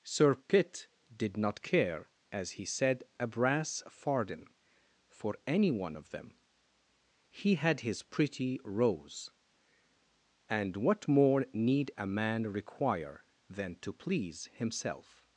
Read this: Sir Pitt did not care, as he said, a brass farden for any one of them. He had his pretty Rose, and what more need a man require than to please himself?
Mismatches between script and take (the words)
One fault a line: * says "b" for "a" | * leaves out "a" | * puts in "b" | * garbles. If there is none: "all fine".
all fine